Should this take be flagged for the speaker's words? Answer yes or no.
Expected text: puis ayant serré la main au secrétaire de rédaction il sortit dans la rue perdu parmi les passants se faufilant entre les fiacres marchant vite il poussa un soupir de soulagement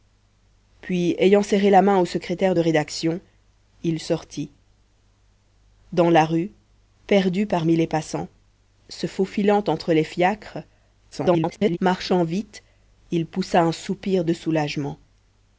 yes